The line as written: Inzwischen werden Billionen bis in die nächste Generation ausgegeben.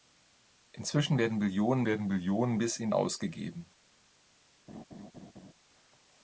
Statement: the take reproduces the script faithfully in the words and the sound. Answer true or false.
false